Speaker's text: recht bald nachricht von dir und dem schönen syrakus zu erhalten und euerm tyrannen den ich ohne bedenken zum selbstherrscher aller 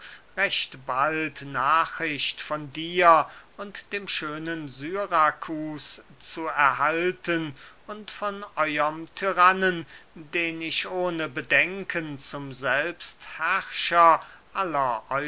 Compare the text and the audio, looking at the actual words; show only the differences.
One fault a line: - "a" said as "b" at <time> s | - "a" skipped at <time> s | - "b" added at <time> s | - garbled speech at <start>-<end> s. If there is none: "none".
- "von" added at 8.1 s